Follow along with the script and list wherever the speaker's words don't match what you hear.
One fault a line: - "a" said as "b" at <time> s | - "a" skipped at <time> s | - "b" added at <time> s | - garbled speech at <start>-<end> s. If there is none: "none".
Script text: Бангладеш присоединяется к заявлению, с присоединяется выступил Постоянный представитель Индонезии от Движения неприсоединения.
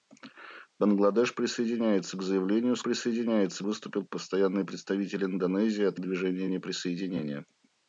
none